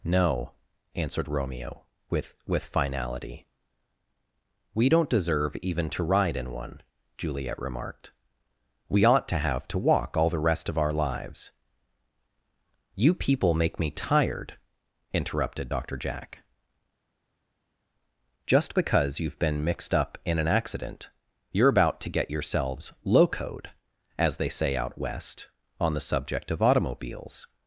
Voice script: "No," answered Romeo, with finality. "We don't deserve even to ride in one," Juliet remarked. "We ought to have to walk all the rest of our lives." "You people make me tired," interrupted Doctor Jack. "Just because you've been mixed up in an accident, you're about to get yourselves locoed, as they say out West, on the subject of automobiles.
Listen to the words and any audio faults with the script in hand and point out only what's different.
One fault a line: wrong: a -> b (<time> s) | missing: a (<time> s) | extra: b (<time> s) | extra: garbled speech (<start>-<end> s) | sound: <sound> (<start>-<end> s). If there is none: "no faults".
extra: with (2.5 s)